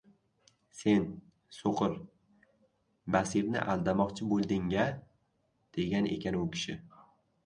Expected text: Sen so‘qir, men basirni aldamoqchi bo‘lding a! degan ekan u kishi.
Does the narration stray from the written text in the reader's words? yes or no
yes